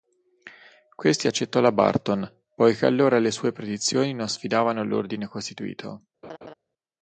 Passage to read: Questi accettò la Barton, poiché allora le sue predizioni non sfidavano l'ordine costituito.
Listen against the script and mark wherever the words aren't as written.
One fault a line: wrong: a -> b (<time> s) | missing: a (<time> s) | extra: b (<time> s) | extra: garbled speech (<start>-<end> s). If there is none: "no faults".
no faults